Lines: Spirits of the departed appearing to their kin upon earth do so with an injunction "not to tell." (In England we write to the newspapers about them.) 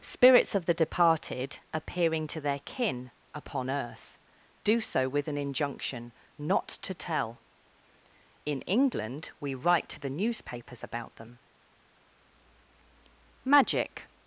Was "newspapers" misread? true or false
false